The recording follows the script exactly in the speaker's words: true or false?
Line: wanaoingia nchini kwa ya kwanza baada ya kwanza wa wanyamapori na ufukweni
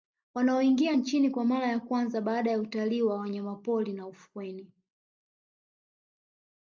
false